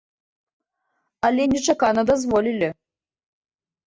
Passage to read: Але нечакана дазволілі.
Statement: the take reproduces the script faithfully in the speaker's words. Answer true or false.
true